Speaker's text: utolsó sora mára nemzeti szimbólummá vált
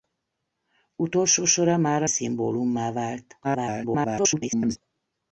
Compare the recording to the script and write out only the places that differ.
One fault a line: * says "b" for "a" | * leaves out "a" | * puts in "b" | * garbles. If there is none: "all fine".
* leaves out "nemzeti"
* garbles